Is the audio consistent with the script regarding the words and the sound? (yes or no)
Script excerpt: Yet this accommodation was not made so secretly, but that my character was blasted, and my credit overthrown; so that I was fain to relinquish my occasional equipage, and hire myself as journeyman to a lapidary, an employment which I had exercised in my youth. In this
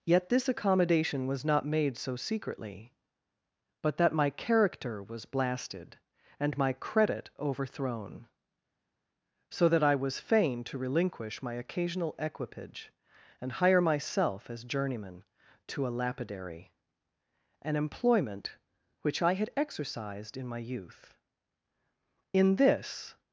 yes